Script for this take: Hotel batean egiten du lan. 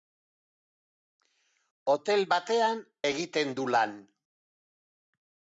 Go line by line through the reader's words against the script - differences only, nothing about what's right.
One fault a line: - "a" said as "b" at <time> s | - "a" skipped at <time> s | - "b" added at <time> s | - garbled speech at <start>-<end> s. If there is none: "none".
none